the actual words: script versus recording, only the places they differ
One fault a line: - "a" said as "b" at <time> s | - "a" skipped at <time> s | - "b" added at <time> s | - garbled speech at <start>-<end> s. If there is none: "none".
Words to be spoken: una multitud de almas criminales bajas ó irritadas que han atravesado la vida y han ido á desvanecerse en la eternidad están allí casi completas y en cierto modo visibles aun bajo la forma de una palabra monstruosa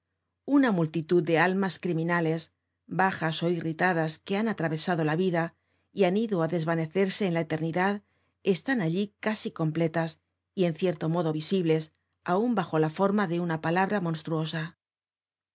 none